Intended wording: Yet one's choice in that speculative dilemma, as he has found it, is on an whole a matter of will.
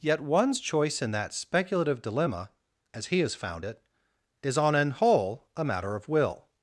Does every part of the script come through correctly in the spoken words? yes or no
yes